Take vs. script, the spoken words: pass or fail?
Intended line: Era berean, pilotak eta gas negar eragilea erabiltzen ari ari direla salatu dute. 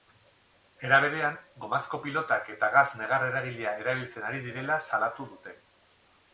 fail